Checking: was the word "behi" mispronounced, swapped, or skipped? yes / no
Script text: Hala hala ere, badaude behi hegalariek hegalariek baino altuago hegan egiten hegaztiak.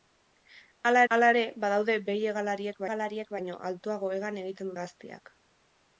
no